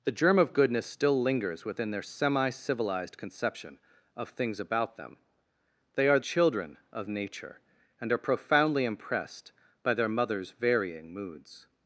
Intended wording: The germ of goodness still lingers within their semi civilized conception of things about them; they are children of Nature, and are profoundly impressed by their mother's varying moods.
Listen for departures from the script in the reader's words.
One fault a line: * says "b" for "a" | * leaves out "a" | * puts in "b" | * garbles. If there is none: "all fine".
all fine